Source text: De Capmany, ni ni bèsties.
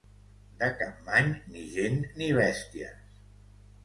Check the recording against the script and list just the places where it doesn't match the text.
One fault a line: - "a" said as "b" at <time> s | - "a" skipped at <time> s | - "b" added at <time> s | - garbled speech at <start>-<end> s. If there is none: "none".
- "gent" added at 1.8 s